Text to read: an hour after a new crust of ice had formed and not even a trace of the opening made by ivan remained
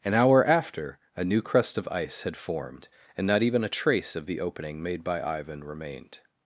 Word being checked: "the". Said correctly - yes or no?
yes